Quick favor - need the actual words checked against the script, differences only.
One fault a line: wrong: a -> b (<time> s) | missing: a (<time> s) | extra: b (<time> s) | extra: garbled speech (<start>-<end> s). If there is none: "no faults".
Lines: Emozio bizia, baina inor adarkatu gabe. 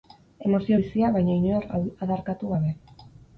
no faults